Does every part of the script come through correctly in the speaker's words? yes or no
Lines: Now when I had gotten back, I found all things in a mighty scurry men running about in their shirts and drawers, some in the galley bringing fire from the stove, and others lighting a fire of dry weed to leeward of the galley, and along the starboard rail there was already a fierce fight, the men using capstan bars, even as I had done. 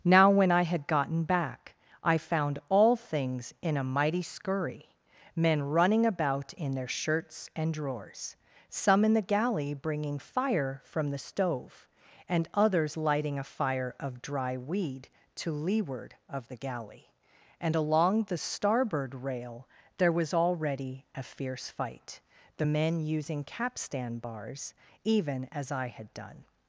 yes